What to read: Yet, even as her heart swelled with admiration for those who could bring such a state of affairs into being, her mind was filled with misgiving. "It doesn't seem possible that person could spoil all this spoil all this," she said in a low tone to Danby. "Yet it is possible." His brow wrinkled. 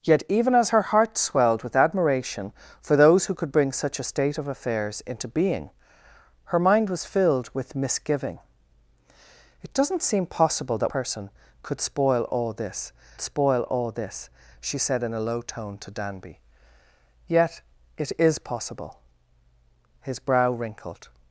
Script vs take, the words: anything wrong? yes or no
no